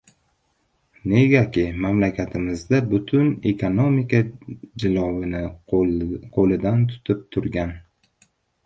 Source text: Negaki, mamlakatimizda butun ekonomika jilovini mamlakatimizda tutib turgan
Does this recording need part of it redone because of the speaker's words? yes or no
yes